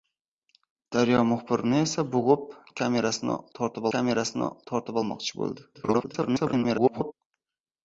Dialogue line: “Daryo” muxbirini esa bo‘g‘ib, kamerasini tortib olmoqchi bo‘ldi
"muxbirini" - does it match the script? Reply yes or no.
yes